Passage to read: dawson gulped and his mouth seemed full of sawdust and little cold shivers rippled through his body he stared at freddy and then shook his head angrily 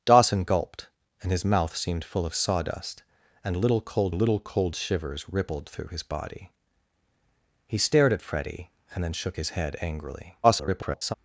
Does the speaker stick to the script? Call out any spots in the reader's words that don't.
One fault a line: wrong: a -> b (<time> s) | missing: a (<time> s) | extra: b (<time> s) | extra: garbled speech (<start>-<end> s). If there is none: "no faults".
extra: little cold (4.1 s)
extra: garbled speech (10.4-11.1 s)